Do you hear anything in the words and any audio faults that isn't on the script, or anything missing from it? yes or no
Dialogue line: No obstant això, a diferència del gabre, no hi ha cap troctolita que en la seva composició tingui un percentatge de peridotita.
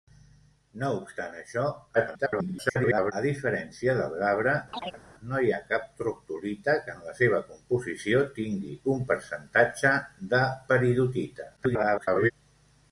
yes